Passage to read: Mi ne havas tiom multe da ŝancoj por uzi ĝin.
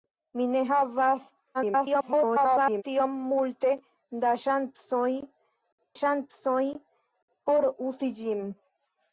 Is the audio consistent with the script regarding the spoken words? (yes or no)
no